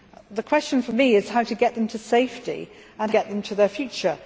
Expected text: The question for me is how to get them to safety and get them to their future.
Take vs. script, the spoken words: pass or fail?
pass